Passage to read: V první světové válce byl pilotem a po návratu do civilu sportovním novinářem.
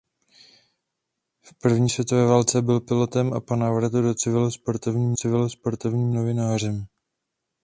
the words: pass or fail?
fail